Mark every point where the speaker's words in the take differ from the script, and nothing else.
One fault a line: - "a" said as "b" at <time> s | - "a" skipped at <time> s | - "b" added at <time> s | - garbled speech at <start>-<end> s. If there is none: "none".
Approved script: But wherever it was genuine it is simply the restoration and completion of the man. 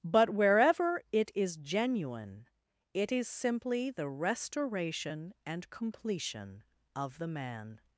- "was" said as "is" at 1.4 s